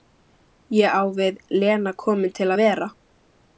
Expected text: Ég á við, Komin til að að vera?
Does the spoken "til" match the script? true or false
true